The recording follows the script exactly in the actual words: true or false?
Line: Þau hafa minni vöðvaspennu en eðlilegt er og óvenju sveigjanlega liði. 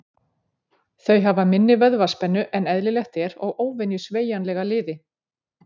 true